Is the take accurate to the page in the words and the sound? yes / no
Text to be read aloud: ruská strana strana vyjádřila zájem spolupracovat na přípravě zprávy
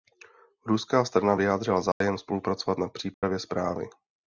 no